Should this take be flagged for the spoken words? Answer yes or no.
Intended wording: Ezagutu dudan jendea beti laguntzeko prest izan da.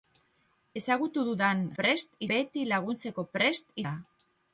yes